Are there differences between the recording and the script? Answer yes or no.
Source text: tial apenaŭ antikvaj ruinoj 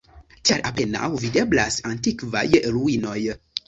yes